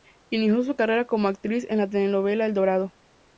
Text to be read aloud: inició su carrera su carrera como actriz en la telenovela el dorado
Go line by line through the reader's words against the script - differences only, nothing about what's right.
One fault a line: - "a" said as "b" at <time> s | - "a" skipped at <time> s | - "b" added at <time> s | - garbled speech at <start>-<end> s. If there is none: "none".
- "su carrera" skipped at 1.1 s